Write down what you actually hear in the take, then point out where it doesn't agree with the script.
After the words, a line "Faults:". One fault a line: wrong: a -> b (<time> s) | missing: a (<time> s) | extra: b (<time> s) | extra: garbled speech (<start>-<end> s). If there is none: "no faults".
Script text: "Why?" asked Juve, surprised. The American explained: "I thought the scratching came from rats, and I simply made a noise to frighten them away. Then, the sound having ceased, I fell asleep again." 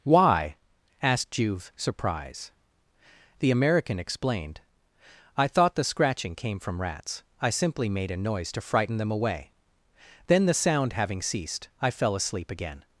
"Why?" asked Juve, surprised. The American explained: "I thought the scratching came from rats, I simply made a noise to frighten them away. Then, the sound having ceased, I fell asleep again."
Faults:
missing: and (7.2 s)